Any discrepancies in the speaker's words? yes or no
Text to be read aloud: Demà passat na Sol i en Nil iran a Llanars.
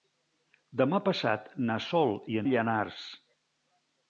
yes